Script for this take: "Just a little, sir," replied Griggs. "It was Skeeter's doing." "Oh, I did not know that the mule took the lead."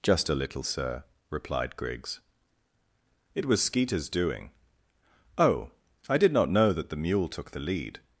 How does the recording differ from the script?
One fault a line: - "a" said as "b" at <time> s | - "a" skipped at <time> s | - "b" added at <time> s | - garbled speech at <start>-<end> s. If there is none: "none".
none